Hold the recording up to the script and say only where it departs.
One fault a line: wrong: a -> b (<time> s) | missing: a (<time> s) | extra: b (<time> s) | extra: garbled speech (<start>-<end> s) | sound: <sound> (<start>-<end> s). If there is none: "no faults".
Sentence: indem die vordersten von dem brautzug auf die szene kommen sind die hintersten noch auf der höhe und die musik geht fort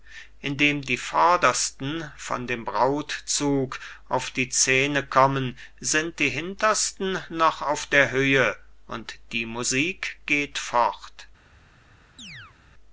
sound: chirp (12.2-12.6 s)